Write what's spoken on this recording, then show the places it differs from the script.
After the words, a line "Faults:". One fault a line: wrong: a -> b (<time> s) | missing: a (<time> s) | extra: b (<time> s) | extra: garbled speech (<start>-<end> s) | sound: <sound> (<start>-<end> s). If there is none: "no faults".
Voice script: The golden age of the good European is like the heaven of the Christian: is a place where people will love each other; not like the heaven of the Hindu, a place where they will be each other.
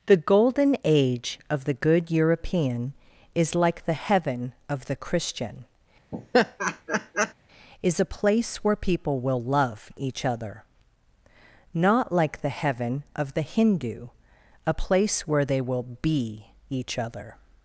The golden age of the good European is like the heaven of the Christian: is a place where people will love each other; not like the heaven of the Hindu, a place where they will be each other.
Faults:
sound: laugh (6.1-7.3 s)